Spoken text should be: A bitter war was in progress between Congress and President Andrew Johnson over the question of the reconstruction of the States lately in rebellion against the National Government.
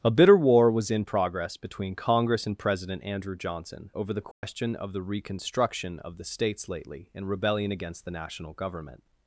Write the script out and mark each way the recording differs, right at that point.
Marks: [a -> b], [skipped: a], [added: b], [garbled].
A bitter war was in progress between Congress and President Andrew Johnson over the question of the reconstruction of the States lately in rebellion against the National Government.